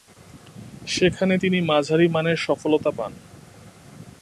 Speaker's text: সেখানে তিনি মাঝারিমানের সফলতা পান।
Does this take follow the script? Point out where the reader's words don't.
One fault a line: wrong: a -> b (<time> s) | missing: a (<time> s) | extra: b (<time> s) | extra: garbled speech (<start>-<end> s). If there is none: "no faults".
no faults